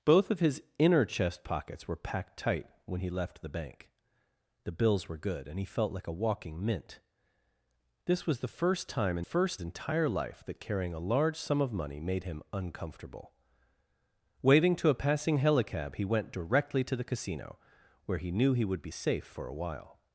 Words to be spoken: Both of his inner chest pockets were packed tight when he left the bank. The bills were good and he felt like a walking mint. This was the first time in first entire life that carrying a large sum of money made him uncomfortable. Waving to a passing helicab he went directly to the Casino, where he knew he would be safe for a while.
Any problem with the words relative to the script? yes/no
no